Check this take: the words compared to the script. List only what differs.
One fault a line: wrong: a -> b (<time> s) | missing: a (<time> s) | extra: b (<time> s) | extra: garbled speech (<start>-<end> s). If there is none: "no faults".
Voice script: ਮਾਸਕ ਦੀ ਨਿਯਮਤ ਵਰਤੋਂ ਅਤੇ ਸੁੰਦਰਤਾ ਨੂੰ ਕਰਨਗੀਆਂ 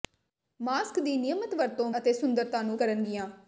no faults